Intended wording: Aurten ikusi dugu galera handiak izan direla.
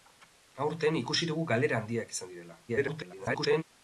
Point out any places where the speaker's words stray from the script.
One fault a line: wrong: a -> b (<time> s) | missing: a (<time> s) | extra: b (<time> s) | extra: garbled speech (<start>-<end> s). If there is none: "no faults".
extra: garbled speech (2.7-3.6 s)